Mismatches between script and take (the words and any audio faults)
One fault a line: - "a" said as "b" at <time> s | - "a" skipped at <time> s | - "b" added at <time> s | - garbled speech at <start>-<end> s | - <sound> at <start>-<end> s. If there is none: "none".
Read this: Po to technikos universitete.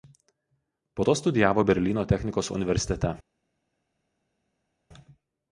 - "studijavo Berlyno" added at 1.2 s